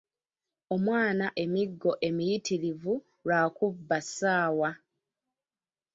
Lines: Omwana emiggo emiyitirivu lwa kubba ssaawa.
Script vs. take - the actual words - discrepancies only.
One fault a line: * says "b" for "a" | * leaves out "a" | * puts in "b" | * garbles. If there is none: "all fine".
all fine